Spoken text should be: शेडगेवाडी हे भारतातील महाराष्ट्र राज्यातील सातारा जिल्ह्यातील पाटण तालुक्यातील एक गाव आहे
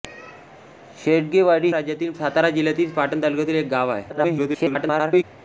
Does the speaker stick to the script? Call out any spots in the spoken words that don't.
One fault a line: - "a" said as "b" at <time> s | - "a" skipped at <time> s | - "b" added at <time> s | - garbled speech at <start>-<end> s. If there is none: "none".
- "हे भारतातील महाराष्ट्र" skipped at 1.7 s
- garbled speech at 4.1-5.2 s